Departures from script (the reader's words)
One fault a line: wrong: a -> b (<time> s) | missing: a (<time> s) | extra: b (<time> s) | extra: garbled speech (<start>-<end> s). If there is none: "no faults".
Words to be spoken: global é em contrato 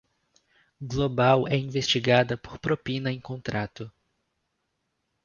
extra: investigada por propina (1.6 s)